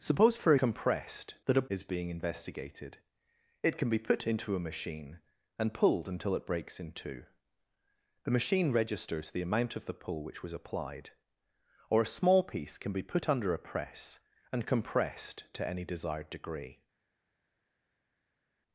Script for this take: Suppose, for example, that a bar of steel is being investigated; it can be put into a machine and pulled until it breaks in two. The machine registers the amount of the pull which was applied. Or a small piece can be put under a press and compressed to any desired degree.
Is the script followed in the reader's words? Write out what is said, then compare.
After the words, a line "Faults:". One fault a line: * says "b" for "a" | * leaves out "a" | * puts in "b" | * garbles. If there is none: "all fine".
Suppose, for compressed, that a is being investigated; it can be put into a machine and pulled until it breaks in two. The machine registers the amount of the pull which was applied. Or a small piece can be put under a press and compressed to any desired degree.
Faults:
* says "compressed" for "example"
* leaves out "bar of steel"